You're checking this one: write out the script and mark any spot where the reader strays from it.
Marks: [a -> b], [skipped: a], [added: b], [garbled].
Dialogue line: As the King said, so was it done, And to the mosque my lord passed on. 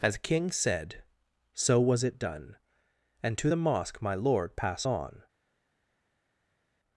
As [skipped: the] King said, so was it done, And to the mosque my lord [passed -> pass] on.